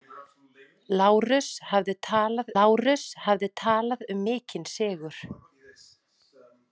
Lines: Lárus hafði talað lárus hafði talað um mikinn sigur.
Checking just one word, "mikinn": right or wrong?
right